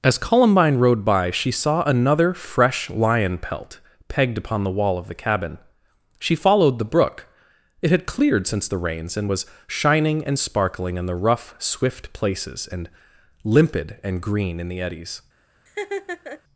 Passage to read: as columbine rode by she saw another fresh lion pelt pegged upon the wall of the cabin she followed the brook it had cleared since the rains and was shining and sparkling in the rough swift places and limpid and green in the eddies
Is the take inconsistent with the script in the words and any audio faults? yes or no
yes